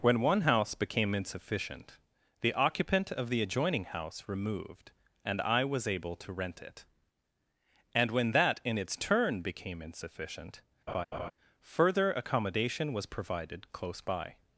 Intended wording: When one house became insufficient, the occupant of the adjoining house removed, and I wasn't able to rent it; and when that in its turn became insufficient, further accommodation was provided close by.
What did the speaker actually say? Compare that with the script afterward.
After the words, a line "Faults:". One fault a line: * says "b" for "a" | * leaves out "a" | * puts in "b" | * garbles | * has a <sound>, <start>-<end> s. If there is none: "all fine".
When one house became insufficient, the occupant of the adjoining house removed, and I was able to rent it; and when that in its turn became insufficient, further accommodation was provided close by.
Faults:
* says "was" for "wasn't"
* has a laugh, 10.9-11.3 s